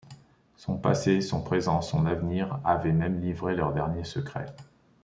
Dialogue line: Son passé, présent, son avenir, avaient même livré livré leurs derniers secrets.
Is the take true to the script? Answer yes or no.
no